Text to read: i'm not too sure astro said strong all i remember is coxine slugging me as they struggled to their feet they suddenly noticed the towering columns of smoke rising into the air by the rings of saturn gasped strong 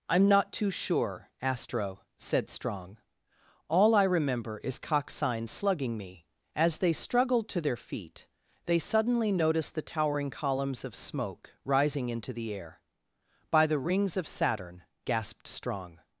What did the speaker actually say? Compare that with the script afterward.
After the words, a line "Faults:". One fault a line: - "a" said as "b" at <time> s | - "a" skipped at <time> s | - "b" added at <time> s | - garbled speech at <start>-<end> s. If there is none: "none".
i'm not too sure astro said strong all i remember is coxine slugging me as they struggled to their feet they suddenly noticed the towering columns of smoke rising into the air by the rings of saturn gasped strong
Faults:
none